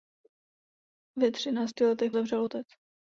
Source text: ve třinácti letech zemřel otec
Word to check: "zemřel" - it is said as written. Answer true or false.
true